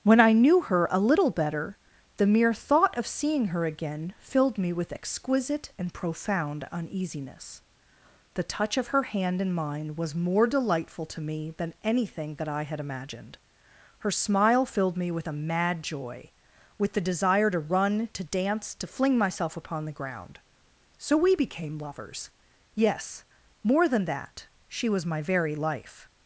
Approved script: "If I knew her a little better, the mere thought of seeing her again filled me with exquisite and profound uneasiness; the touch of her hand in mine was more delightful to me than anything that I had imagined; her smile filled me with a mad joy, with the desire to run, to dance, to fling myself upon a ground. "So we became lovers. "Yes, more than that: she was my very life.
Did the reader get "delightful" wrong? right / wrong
right